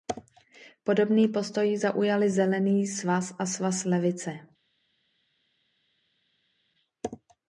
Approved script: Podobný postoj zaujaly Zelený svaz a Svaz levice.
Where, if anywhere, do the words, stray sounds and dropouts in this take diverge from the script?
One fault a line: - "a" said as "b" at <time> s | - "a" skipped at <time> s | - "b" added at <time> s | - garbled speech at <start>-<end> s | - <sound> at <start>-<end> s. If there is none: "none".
none